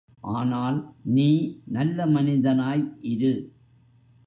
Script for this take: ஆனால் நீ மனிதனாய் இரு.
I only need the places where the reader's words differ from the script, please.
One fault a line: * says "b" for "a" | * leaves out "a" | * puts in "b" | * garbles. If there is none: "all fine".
* puts in "நல்ல"